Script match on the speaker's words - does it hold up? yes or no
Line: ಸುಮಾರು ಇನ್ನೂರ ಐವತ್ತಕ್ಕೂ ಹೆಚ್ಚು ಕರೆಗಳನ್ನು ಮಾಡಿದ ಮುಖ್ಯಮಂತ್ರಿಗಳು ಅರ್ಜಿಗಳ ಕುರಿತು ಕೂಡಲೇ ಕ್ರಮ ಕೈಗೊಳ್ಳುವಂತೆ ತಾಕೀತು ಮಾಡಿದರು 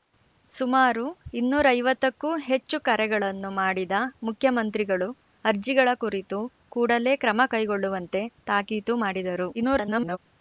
no